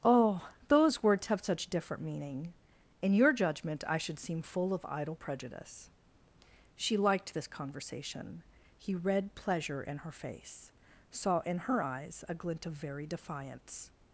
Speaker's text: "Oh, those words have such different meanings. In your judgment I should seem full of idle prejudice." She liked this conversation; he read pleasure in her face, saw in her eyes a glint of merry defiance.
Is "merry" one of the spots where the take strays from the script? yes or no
yes